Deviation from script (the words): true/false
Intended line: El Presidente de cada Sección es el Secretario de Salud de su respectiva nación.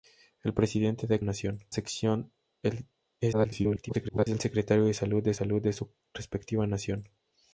true